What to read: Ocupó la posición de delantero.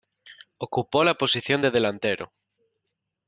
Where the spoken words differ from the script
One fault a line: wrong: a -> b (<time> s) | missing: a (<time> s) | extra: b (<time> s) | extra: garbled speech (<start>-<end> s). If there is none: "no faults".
no faults